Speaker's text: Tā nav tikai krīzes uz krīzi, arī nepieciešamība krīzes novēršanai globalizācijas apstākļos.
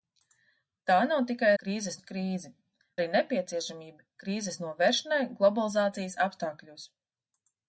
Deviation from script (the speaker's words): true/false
false